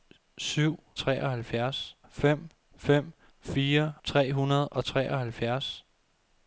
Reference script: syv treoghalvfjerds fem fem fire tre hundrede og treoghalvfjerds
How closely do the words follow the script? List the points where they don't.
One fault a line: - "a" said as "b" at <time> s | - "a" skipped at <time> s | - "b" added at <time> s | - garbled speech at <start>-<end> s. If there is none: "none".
none